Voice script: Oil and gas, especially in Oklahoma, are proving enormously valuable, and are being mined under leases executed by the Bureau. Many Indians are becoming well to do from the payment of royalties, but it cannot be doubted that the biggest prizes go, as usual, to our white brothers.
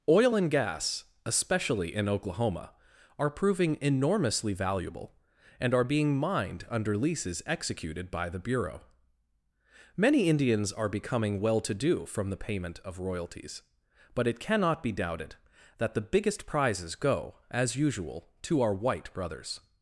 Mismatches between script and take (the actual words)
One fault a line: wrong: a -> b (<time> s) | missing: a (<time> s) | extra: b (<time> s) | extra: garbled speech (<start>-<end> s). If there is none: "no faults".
no faults